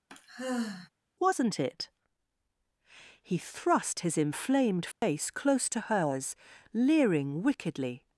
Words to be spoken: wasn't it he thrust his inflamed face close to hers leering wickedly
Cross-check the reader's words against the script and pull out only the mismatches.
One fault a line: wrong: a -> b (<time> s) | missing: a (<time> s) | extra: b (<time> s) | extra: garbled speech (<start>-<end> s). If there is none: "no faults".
no faults